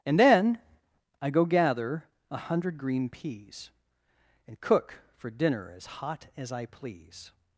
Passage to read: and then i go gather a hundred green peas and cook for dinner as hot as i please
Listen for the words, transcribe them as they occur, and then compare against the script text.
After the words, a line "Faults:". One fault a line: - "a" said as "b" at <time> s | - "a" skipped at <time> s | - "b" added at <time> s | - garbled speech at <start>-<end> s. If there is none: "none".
and then i go gather a hundred green peas and cook for dinner as hot as i please
Faults:
none